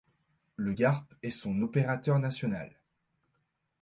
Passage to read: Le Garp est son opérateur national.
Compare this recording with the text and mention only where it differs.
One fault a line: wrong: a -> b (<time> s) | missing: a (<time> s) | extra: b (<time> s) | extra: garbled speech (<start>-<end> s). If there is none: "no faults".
no faults